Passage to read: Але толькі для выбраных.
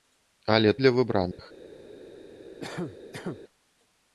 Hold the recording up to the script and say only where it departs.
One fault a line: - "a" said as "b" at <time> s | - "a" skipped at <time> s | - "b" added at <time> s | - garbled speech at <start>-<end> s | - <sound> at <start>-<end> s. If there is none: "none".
- "толькі" skipped at 0.7 s
- dropout at 1.3-1.4 s
- cough at 2.6-3.4 s